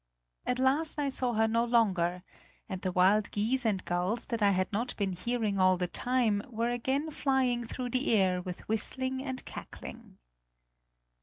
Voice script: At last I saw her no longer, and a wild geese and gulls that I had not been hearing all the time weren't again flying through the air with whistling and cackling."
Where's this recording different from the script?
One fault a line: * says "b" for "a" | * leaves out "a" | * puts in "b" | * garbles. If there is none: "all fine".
* says "the" for "a"
* says "were" for "weren't"